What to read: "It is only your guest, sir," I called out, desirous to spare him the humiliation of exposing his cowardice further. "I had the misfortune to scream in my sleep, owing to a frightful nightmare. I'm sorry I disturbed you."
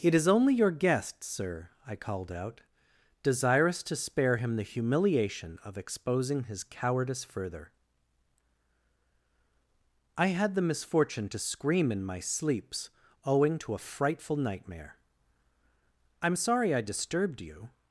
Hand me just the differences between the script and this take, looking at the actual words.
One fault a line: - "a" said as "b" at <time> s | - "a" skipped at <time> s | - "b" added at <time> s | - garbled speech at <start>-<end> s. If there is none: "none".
- "sleep" said as "sleeps" at 12.2 s